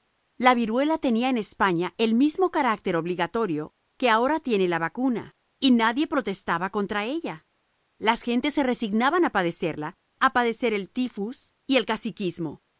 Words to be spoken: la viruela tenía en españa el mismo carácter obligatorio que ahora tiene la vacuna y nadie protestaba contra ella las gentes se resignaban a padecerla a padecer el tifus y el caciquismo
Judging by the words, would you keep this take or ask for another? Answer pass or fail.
pass